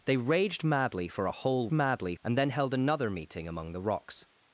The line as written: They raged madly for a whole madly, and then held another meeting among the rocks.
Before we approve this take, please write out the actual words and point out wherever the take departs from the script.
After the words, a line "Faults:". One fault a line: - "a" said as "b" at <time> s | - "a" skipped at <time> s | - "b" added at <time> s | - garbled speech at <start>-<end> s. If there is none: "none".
They raged madly for a whole madly, and then held another meeting among the rocks.
Faults:
none